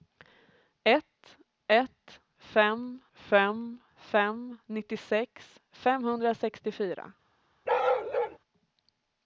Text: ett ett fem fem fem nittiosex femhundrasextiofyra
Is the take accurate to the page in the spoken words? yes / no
yes